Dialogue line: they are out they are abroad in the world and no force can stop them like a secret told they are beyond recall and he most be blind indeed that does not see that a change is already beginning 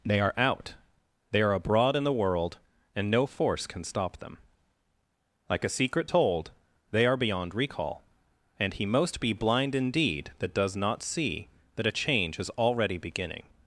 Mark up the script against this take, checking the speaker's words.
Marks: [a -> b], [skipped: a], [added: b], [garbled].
they are out they are abroad in the world and no force can stop them like a secret told they are beyond recall and he most be blind indeed that does not see that a change is already beginning